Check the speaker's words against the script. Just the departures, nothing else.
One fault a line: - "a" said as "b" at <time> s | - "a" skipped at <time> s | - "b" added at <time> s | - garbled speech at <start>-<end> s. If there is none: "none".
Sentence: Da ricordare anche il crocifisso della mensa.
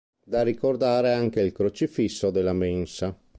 none